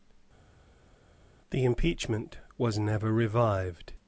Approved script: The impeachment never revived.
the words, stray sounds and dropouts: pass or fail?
fail